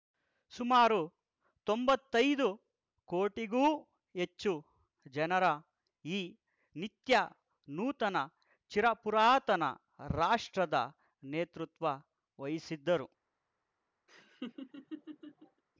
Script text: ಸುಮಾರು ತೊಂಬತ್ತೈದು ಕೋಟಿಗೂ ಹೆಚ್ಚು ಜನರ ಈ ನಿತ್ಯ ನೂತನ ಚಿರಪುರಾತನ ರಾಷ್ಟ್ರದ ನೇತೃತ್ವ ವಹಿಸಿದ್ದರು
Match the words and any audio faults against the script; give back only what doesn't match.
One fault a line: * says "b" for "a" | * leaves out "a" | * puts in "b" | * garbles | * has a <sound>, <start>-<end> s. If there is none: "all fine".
* has a laugh, 14.1-15.6 s